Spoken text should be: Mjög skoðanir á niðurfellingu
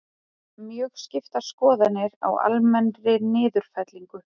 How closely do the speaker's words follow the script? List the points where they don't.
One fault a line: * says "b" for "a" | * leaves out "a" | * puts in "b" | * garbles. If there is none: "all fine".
* puts in "skiptar"
* puts in "almennri"